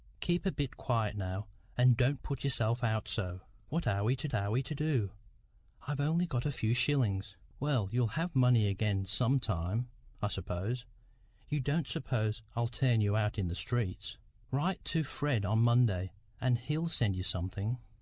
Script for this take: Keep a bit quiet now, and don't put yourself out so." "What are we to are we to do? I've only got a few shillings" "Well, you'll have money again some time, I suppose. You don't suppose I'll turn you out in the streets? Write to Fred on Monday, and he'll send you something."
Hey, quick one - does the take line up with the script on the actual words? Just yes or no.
yes